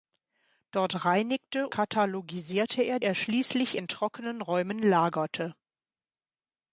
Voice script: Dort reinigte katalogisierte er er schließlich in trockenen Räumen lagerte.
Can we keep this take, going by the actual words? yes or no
yes